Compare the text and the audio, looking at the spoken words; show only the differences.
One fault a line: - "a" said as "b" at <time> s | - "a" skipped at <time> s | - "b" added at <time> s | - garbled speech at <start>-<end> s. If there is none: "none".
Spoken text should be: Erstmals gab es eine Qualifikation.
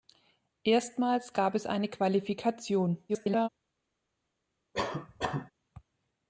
- garbled speech at 3.1-3.5 s